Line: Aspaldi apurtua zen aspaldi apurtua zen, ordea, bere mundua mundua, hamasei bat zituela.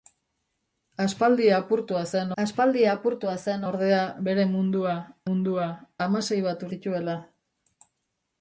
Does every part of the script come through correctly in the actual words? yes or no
yes